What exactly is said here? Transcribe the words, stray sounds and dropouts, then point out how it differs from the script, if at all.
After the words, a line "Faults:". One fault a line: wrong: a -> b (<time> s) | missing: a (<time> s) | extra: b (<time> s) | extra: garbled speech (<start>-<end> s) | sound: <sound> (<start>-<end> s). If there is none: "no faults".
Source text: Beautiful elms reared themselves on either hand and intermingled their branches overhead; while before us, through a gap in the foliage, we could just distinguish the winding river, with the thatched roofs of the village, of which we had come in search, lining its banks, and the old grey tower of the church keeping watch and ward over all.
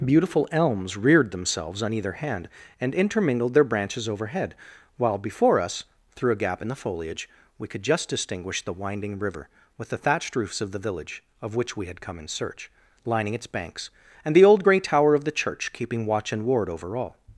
Beautiful elms reared themselves on either hand and intermingled their branches overhead; while before us, through a gap in the foliage, we could just distinguish the winding river, with the thatched roofs of the village, of which we had come in search, lining its banks, and the old grey tower of the church keeping watch and ward over all.
Faults:
no faults